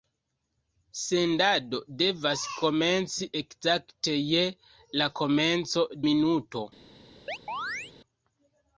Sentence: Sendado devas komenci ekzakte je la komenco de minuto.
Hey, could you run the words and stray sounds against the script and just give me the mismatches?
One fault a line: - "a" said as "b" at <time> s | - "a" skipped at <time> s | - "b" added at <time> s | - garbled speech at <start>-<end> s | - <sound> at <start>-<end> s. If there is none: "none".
- "de" skipped at 5.8 s
- chirp at 7.3-7.9 s